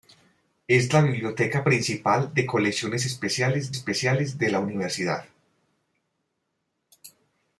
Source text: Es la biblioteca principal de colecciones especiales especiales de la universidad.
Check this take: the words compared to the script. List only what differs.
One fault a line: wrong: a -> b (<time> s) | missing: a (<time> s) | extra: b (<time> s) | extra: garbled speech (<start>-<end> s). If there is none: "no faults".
no faults